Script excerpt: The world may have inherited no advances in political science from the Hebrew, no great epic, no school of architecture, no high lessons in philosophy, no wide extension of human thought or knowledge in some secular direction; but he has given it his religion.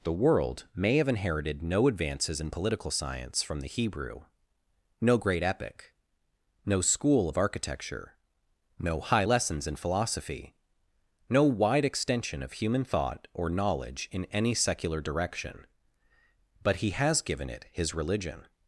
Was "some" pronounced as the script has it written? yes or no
no